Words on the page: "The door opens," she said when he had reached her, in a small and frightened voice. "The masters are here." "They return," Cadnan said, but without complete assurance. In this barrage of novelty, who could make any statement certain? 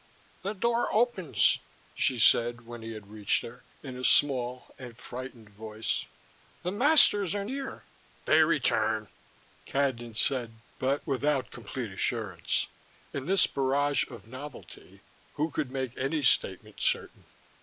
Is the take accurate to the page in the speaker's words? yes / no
yes